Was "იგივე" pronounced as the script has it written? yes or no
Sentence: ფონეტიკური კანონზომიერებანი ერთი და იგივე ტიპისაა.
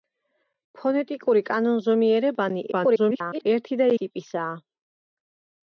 no